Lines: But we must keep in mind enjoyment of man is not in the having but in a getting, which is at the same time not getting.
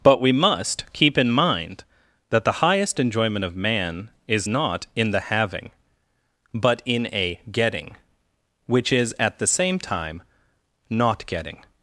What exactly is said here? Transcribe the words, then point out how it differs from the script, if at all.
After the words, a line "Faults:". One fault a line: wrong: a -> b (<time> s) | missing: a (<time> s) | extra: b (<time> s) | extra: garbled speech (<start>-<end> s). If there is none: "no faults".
But we must keep in mind that the highest enjoyment of man is not in the having but in a getting, which is at the same time not getting.
Faults:
extra: that the highest (2.3 s)